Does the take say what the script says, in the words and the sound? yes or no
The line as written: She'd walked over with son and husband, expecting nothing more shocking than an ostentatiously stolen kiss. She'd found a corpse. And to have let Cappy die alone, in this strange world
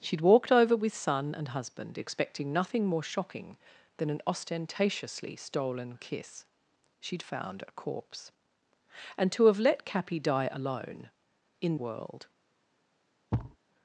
no